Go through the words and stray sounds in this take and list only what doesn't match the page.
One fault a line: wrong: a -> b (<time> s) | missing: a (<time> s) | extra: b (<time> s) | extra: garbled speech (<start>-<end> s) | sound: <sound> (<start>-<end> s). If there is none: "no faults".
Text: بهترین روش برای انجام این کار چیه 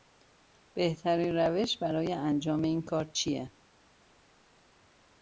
no faults